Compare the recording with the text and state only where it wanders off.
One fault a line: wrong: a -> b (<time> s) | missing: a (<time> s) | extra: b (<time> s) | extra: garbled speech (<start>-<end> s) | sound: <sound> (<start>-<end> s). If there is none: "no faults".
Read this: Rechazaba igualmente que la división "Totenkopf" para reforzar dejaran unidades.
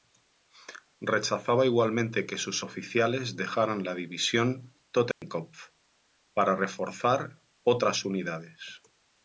extra: sus oficiales dejaran (2.4 s)
sound: dropout (5.1-5.2 s)
wrong: dejaran -> otras (7.6 s)